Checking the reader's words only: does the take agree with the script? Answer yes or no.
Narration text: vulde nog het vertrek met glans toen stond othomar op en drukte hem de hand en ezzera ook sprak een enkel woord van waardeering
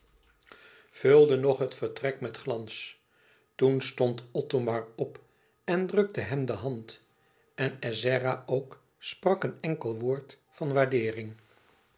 yes